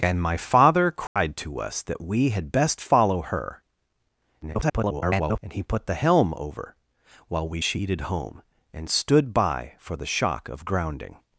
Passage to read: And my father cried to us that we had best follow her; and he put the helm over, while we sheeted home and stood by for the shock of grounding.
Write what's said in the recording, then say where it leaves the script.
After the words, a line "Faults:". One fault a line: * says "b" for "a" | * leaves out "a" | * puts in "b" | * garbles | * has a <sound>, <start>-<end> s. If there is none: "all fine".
And my father cried to us that we had best follow her; [garbled] and he put the helm over, while we sheeted home and stood by for the shock of grounding.
Faults:
* has a dropout, 1.1-1.2 s
* garbles